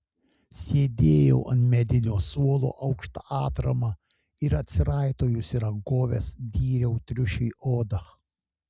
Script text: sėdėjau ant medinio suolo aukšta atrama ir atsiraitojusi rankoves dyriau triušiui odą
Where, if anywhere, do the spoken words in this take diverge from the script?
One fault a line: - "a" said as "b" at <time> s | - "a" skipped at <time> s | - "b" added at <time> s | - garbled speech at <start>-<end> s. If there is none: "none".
none